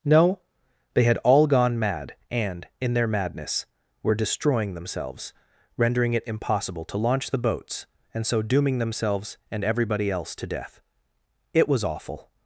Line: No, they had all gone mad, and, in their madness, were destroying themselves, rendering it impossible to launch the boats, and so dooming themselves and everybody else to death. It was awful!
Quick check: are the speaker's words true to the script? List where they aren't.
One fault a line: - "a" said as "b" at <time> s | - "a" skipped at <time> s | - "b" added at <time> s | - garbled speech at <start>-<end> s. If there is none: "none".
none